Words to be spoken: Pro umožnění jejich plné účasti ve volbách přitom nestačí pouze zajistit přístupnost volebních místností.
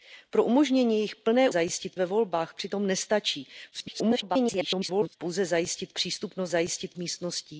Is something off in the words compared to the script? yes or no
yes